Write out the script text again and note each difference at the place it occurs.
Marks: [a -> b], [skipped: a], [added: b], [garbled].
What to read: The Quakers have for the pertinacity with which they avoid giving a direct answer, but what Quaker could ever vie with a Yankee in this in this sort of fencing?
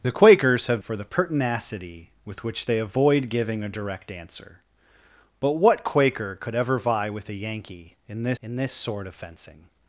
The Quakers have for the pertinacity with which they avoid giving a direct answer, but what Quaker could ever vie with a Yankee in this in this sort of fencing?